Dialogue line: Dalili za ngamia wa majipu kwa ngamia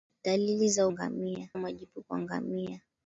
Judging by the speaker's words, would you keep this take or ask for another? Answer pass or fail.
pass